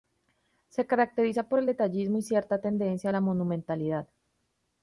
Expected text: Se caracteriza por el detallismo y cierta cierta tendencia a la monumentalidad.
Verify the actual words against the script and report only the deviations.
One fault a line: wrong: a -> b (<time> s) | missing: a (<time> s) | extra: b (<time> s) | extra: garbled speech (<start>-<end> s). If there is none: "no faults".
missing: cierta (2.6 s)